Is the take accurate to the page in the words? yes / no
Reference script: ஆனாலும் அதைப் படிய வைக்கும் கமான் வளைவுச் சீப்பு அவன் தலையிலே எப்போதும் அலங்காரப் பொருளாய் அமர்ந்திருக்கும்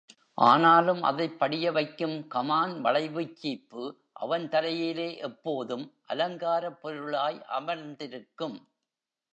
yes